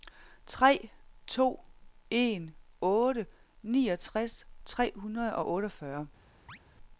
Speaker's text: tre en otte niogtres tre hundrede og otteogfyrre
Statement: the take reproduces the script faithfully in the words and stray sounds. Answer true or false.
false